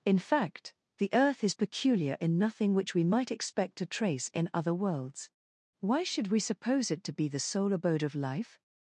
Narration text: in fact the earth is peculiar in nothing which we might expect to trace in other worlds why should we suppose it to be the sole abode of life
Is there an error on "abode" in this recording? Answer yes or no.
no